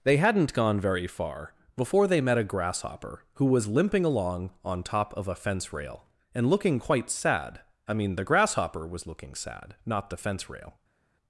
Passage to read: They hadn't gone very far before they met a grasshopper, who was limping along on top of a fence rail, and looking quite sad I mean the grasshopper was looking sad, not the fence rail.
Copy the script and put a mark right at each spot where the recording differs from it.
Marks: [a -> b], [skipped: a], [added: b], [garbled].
They hadn't gone very far before they met a grasshopper, who was limping along on top of a fence rail, and looking quite sad I mean the grasshopper was looking sad, not the fence rail.